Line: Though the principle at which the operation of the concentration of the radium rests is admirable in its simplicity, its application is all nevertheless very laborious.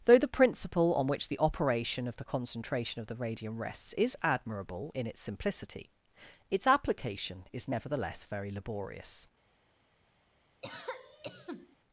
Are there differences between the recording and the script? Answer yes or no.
yes